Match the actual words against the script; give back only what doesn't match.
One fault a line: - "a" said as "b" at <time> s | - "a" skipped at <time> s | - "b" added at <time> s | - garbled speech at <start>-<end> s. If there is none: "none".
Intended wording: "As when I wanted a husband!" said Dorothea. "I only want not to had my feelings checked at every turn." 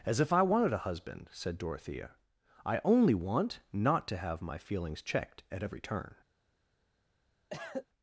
- "when" said as "if" at 0.2 s
- "had" said as "have" at 4.2 s